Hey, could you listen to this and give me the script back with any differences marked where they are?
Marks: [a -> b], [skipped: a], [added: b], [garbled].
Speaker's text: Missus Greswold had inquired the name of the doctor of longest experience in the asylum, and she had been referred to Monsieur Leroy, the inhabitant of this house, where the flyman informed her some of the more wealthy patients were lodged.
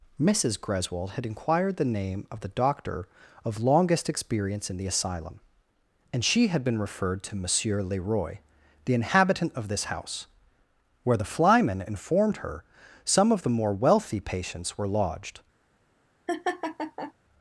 Missus Greswold had inquired the name of the doctor of longest experience in the asylum, and she had been referred to Monsieur Leroy, the inhabitant of this house, where the flyman informed her some of the more wealthy patients were lodged.